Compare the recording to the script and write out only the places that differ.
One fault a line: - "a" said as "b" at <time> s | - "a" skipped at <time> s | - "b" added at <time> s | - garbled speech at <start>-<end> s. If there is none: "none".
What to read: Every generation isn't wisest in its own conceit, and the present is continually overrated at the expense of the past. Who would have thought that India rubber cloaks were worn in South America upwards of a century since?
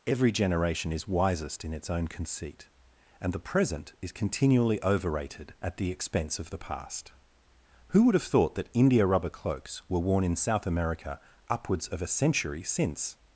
- "isn't" said as "is" at 0.9 s